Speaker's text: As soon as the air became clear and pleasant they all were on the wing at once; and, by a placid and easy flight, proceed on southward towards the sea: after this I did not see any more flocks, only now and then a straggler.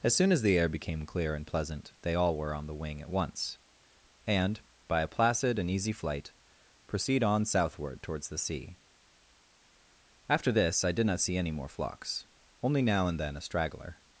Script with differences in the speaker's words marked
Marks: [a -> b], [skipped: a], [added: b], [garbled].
As soon as the air became clear and pleasant they all were on the wing at once; and, by a placid and easy flight, proceed on southward towards the sea: after this I did not see any more flocks, only now and then a straggler.